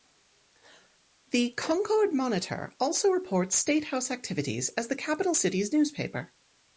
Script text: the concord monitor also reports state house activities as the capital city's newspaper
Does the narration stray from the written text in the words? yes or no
no